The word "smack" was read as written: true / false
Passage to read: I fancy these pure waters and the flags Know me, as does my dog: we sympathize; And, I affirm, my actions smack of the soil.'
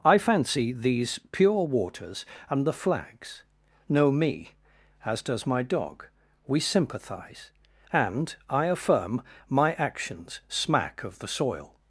true